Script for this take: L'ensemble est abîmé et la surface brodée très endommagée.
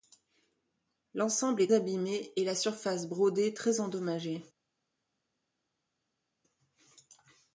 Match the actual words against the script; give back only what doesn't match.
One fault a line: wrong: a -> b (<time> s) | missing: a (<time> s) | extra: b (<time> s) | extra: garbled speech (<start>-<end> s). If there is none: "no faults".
no faults